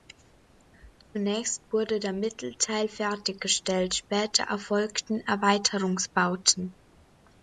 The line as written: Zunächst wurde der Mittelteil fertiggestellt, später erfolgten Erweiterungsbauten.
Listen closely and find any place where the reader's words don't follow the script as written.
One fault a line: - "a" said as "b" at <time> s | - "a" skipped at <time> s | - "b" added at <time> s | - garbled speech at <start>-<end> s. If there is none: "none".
none